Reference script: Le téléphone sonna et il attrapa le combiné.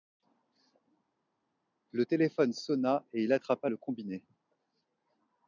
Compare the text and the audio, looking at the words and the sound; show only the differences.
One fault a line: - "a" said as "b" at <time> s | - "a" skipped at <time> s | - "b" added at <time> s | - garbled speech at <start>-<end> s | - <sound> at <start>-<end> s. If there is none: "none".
none